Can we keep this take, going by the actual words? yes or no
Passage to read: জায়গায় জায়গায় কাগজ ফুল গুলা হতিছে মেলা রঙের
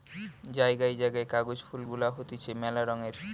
yes